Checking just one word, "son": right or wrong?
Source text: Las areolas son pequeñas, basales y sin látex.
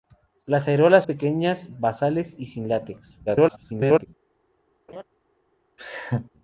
wrong